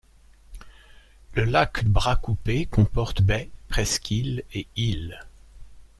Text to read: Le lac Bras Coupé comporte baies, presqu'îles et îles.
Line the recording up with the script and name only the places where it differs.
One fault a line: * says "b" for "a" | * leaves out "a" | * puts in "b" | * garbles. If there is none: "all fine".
all fine